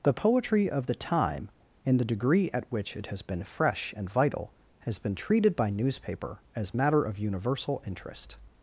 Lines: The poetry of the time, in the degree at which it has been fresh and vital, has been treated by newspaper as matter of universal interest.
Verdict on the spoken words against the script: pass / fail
pass